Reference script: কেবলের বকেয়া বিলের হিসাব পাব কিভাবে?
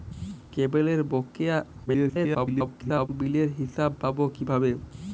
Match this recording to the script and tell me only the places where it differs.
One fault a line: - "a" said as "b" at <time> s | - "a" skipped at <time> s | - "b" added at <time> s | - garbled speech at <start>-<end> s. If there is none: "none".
- garbled speech at 1.9-3.1 s